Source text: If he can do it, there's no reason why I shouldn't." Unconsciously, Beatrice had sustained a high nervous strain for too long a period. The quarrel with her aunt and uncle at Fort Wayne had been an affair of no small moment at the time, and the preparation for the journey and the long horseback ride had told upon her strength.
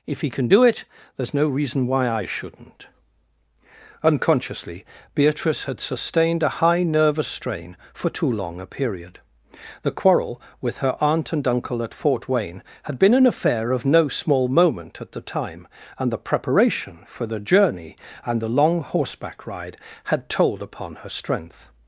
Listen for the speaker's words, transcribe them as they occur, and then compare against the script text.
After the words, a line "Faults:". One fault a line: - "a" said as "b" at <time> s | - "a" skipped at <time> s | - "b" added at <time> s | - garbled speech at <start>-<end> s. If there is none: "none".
If he can do it, there's no reason why I shouldn't." Unconsciously, Beatrice had sustained a high nervous strain for too long a period. The quarrel with her aunt and uncle at Fort Wayne had been an affair of no small moment at the time, and the preparation for the journey and the long horseback ride had told upon her strength.
Faults:
none